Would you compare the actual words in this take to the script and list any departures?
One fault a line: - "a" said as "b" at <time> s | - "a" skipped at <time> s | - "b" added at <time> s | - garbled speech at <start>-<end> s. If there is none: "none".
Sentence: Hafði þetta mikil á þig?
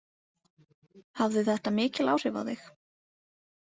- "áhrif" added at 2.2 s